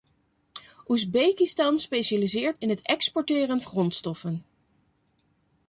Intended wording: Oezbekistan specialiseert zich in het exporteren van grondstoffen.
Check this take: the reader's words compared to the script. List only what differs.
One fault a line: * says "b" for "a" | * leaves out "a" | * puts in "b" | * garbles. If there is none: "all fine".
* leaves out "zich"
* leaves out "van"